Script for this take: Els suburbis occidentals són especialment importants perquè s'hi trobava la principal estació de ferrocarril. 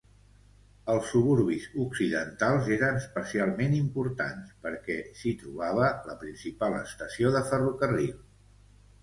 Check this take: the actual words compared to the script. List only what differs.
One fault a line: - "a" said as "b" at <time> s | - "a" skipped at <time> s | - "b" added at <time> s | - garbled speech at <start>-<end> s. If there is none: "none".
- "són" said as "eren" at 2.8 s